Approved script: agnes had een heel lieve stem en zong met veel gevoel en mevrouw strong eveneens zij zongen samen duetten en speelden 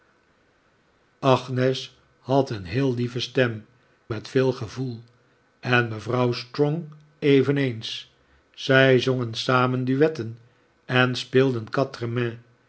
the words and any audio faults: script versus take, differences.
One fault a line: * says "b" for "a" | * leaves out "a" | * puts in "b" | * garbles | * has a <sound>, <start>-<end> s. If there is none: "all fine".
* leaves out "en zong"